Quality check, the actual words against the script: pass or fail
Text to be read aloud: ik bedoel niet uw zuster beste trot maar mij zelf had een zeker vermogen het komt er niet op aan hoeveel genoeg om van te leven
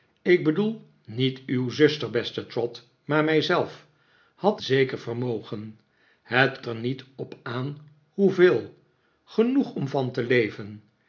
fail